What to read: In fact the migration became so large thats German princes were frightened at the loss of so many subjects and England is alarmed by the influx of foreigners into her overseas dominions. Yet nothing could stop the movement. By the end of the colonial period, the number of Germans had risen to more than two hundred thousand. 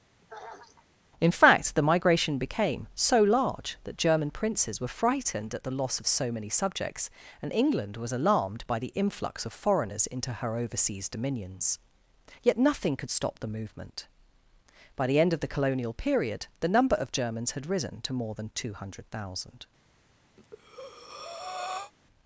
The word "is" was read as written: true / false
false